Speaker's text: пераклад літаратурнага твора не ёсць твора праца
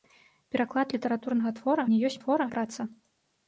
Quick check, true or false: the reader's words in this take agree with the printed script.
true